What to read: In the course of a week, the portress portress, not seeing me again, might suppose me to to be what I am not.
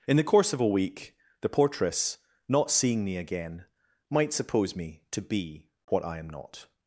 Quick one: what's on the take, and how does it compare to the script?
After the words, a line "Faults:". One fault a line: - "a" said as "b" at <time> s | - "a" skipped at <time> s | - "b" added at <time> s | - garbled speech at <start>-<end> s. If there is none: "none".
In the course of a week, the portress, not seeing me again, might suppose me to be what I am not.
Faults:
- "portress" skipped at 2.2 s
- "to" skipped at 5.2 s